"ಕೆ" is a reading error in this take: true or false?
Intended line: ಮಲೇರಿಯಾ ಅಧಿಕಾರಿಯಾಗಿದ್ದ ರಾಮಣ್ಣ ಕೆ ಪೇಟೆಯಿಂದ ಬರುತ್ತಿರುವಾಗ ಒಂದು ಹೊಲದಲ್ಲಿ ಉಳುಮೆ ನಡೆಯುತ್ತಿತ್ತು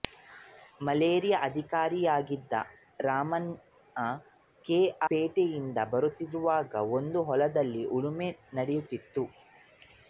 false